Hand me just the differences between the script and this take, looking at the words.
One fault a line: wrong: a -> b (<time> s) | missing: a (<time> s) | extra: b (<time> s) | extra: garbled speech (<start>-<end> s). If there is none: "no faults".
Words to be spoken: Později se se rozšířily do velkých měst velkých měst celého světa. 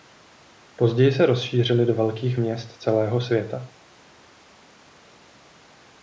missing: se (1.2 s)
missing: velkých měst (2.7 s)